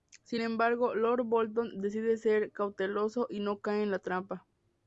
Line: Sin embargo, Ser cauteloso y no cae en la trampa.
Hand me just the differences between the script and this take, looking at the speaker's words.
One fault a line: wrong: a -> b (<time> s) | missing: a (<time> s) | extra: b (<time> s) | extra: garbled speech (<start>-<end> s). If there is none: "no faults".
extra: Lord Bolton decide (0.9 s)